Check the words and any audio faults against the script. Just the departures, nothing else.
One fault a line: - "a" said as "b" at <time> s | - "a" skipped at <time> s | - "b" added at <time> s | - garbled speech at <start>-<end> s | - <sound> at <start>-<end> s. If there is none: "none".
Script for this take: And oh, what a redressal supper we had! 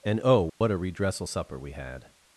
- dropout at 0.5-0.6 s